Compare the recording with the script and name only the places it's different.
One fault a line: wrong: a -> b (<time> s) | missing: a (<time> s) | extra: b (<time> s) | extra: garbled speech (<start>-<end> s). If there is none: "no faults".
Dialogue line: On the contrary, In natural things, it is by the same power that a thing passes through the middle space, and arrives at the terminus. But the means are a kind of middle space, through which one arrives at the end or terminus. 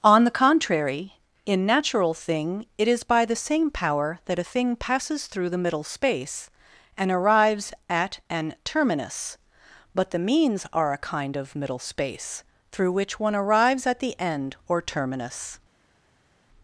wrong: things -> thing (2.1 s)
wrong: the -> an (8.3 s)